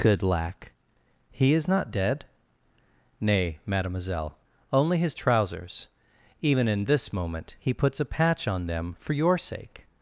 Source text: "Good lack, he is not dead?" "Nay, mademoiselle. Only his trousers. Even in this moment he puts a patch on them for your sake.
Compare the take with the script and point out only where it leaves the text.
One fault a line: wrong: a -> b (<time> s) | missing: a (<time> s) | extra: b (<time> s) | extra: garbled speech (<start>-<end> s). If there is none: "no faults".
no faults